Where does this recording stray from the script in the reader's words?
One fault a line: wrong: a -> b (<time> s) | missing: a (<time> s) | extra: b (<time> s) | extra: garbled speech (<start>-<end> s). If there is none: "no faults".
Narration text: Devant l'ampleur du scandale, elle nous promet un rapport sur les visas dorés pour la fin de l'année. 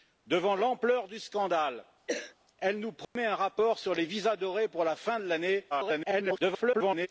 extra: garbled speech (5.7-7.1 s)